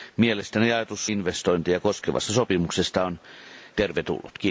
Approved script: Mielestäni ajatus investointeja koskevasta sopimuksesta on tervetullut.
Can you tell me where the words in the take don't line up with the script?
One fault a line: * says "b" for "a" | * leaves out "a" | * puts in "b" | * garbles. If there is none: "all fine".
all fine